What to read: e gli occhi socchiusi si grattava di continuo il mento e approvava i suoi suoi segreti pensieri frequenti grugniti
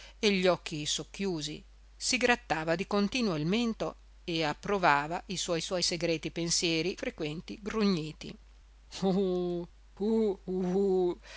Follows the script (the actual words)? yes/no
yes